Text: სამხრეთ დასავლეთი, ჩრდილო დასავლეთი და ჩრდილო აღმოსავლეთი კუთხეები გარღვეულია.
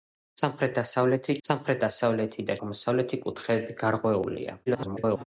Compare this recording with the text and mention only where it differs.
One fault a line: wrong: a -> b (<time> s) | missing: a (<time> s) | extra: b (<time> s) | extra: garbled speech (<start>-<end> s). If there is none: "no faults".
wrong: ჩრდილო -> სამხრეთ (1.5 s)
missing: ჩრდილო (2.6 s)
extra: garbled speech (4.7-5.2 s)